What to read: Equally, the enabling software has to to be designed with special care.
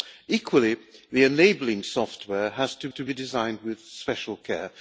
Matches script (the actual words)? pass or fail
pass